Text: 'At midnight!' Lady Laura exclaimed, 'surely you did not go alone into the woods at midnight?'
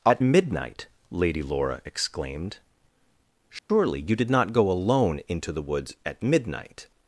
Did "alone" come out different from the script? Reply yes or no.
no